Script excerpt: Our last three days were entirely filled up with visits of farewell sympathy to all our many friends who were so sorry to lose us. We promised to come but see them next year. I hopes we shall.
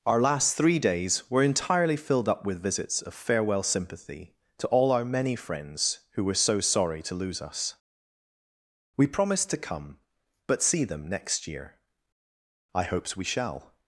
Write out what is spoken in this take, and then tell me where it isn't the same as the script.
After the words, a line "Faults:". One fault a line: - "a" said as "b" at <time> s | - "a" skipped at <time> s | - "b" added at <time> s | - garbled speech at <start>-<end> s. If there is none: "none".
Our last three days were entirely filled up with visits of farewell sympathy to all our many friends who were so sorry to lose us. We promised to come but see them next year. I hopes we shall.
Faults:
none